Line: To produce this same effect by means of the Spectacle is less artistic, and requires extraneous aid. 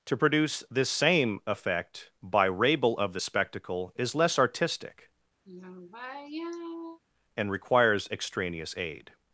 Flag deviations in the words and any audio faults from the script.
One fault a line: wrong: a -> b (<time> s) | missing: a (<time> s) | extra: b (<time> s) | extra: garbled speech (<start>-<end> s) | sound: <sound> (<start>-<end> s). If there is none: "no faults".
wrong: means -> rabel (2.5 s)
sound: sigh (5.4-7.0 s)